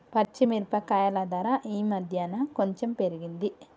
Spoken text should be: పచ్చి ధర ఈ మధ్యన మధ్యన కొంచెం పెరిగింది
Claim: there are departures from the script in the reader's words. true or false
true